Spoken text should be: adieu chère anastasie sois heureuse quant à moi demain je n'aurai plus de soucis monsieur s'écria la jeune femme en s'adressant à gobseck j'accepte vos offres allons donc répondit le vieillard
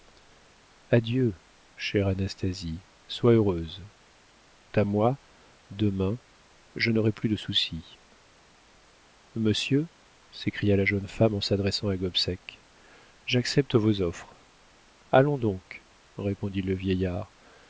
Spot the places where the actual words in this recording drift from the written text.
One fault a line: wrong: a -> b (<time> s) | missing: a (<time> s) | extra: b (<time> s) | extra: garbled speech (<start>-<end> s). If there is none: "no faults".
missing: quant (3.8 s)